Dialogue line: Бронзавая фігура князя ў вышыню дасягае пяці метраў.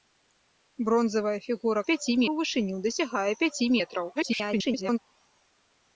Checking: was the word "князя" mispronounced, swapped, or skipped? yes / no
yes